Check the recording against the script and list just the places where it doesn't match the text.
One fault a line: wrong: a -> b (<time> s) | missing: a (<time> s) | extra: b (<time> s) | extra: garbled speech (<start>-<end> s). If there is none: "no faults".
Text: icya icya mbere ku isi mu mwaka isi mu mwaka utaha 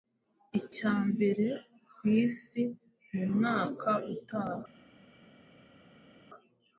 missing: icya (0.9 s)
missing: isi mu mwaka (3.9 s)